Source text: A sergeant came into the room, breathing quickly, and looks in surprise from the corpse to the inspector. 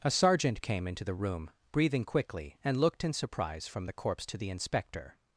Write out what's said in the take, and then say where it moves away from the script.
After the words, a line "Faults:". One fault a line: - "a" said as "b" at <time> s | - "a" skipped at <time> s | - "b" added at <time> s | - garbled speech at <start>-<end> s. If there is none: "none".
A sergeant came into the room, breathing quickly, and looked in surprise from the corpse to the inspector.
Faults:
- "looks" said as "looked" at 2.8 s